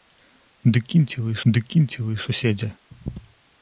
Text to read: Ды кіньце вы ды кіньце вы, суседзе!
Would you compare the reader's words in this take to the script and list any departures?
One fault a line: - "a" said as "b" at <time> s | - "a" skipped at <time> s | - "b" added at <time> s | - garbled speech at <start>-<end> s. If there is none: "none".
none